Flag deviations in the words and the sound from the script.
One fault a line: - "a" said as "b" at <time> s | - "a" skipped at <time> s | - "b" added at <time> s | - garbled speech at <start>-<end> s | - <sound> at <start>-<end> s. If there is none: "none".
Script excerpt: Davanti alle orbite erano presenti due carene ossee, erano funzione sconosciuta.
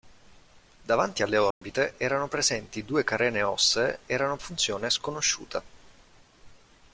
- dropout at 1.5-1.6 s